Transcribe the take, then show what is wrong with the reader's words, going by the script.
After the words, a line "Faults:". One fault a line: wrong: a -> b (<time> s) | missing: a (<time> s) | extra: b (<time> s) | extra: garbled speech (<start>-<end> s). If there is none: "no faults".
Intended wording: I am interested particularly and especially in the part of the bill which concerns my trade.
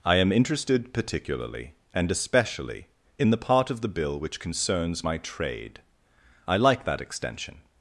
I am interested particularly and especially in the part of the bill which concerns my trade. I like that extension
Faults:
extra: I like that extension (6.5 s)